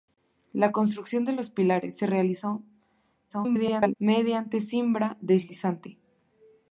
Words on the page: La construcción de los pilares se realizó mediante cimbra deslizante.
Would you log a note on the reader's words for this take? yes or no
yes